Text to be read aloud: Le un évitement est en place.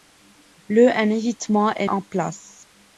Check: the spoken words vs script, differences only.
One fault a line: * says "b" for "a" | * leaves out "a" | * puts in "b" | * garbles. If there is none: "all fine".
all fine